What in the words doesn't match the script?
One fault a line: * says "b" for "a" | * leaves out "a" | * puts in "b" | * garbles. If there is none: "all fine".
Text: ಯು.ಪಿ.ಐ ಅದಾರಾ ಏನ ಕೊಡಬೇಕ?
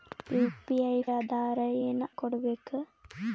all fine